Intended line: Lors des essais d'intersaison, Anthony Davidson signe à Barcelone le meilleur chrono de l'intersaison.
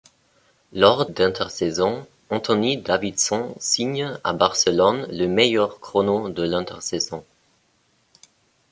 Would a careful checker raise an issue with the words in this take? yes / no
yes